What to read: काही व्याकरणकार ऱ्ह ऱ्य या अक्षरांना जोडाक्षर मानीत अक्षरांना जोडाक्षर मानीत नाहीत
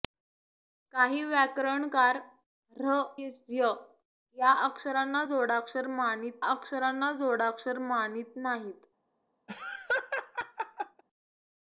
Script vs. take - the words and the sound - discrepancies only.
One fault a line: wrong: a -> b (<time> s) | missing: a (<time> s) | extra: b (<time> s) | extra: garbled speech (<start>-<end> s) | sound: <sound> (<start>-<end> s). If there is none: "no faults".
sound: laugh (9.5-11.0 s)